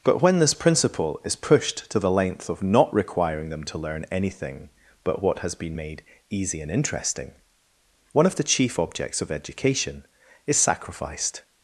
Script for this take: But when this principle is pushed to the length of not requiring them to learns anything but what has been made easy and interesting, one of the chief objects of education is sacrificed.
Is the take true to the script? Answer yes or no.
no